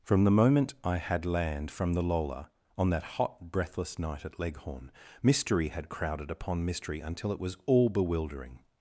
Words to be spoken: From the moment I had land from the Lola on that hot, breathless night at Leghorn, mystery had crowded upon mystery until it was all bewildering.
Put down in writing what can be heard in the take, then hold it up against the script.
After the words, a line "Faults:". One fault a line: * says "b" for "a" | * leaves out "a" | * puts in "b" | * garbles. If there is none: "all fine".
From the moment I had land from the Lola on that hot, breathless night at Leghorn, mystery had crowded upon mystery until it was all bewildering.
Faults:
all fine